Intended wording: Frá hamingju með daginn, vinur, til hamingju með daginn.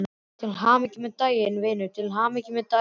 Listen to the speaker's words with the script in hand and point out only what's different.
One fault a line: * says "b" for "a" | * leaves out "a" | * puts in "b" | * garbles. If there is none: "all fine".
* says "Til" for "Frá"